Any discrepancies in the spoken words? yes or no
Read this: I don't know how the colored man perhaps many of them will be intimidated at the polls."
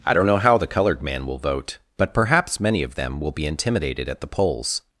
yes